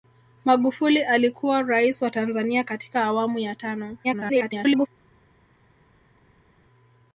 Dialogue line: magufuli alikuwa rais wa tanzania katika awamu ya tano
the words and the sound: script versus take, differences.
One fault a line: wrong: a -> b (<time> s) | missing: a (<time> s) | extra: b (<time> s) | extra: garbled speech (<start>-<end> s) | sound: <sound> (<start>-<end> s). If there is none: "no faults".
extra: garbled speech (4.0-4.9 s)